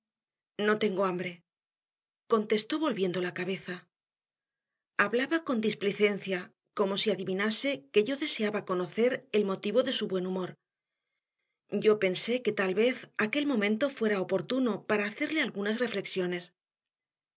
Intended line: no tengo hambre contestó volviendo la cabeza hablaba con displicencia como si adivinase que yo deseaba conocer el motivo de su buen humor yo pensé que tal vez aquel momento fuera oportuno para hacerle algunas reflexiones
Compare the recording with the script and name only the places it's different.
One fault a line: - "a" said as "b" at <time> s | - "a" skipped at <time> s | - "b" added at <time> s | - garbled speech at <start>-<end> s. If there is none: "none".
none